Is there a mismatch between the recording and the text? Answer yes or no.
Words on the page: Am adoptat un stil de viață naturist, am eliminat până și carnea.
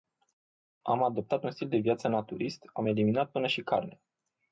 no